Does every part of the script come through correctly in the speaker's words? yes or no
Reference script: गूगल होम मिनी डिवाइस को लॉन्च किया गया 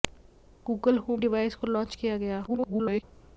no